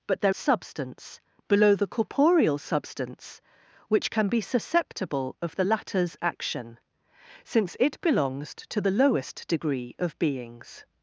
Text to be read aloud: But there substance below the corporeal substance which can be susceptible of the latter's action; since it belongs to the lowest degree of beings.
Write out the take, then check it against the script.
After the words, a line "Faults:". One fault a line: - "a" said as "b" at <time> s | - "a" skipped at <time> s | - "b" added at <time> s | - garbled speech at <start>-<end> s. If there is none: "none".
But there substance below the corporeal substance which can be susceptible of the latter's action; since it belongs to the lowest degree of beings.
Faults:
none